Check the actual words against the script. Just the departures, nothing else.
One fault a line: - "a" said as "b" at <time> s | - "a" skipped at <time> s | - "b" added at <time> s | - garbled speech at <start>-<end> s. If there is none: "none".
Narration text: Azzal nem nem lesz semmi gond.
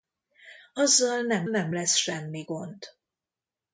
none